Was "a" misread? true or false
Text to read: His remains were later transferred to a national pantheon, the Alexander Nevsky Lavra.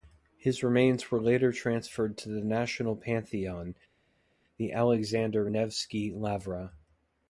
true